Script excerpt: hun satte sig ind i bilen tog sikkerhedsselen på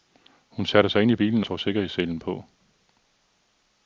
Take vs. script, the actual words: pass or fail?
pass